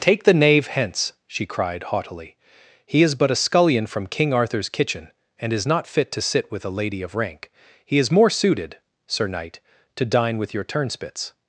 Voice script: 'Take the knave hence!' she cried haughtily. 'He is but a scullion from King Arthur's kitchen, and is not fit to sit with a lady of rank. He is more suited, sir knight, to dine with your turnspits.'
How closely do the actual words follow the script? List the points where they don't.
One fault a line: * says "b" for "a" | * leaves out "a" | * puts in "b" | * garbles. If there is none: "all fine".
all fine